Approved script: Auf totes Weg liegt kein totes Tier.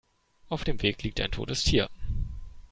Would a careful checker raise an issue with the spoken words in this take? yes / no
yes